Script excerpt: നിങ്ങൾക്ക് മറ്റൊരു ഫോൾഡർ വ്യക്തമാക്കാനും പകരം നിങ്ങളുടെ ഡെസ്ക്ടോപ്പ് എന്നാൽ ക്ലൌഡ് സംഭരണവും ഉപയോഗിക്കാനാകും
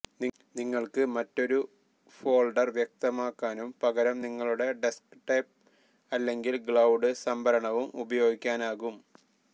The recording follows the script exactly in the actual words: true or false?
false